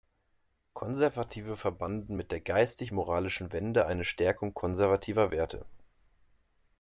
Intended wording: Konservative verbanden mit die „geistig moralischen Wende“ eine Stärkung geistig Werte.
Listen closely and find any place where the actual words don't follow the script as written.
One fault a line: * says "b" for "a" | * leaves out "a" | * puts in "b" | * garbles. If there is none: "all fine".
* says "der" for "die"
* says "konservativer" for "geistig"